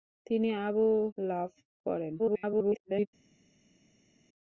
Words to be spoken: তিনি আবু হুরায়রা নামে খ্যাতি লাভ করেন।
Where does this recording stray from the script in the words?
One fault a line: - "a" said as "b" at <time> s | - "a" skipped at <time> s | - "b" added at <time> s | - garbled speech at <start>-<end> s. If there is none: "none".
- "হুরায়রা নামে খ্যাতি" skipped at 0.8 s
- garbled speech at 2.2-3.1 s